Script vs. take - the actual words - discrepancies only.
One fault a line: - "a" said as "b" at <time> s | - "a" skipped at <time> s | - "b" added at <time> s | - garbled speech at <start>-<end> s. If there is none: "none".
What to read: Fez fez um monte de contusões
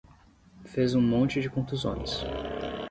- "fez" skipped at 0.9 s